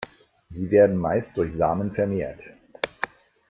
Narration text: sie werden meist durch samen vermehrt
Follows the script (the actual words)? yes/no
yes